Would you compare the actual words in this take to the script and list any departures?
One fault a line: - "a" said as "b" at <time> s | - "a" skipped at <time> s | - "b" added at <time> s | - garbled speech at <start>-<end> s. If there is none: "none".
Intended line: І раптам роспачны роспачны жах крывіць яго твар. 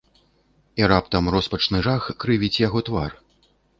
- "роспачны" skipped at 1.8 s